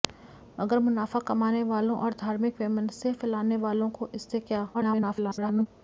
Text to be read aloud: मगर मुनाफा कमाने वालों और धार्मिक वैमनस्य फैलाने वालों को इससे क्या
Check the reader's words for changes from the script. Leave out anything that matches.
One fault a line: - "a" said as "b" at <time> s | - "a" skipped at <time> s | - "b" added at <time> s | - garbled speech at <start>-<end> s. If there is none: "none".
- garbled speech at 4.7-5.7 s